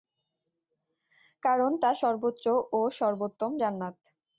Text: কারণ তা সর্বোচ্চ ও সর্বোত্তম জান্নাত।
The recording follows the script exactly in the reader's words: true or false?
true